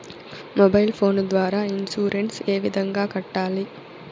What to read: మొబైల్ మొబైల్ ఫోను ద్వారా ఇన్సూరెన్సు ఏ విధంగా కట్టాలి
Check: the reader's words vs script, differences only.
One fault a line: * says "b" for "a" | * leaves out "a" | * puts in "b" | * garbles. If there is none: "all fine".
* leaves out "మొబైల్"